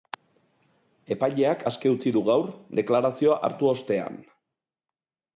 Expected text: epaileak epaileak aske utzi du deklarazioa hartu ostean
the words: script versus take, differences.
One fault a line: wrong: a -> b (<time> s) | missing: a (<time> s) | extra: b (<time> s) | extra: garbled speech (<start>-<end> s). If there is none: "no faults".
missing: epaileak (1.6 s)
extra: gaur (2.3 s)